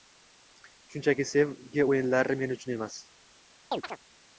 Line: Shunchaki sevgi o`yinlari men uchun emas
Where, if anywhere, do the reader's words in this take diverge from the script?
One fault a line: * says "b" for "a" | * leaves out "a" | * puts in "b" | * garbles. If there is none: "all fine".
all fine